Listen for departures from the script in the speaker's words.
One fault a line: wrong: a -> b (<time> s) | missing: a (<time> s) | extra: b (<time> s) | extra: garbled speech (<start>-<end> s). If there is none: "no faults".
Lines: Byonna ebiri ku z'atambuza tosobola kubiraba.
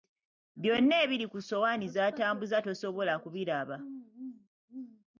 extra: ssowaani (1.4 s)